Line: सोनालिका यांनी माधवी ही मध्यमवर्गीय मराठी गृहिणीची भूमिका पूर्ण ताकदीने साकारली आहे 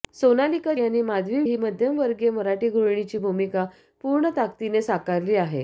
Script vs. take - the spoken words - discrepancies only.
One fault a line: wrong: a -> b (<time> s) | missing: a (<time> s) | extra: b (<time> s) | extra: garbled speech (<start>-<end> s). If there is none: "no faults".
no faults